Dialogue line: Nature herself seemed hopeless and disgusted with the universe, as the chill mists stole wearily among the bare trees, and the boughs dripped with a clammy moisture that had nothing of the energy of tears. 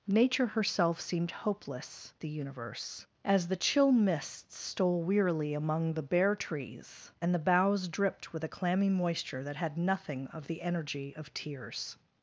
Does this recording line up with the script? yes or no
no